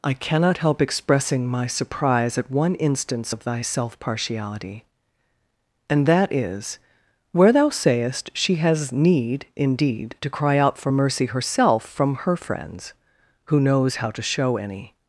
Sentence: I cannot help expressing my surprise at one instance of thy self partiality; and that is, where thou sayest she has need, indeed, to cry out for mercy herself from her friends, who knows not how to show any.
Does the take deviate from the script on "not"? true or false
true